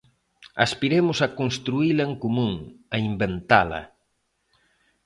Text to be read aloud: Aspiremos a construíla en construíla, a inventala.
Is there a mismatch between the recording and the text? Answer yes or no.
yes